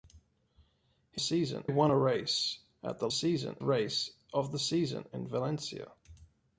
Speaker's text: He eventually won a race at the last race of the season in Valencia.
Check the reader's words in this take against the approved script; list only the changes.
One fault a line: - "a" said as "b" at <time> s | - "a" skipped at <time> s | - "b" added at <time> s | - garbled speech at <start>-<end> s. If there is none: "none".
- "eventually" said as "season" at 1.2 s
- "last" said as "season" at 3.1 s